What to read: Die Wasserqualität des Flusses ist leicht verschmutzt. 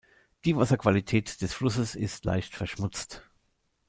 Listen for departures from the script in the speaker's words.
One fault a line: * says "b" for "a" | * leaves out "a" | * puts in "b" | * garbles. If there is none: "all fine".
all fine